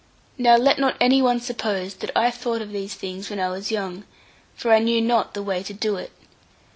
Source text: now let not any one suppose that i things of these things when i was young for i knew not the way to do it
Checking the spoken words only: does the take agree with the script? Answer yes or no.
no